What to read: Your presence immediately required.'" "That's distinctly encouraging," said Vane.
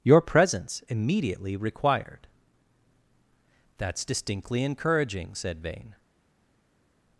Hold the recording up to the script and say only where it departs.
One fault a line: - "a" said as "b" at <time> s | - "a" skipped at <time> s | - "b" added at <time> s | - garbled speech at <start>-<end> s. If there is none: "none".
none